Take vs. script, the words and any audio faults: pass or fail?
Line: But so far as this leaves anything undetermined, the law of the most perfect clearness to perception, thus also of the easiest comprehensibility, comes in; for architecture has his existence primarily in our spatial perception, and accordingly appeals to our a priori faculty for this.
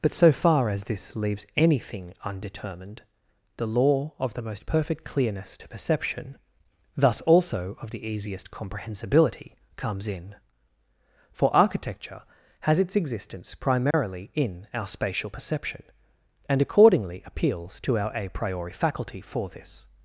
fail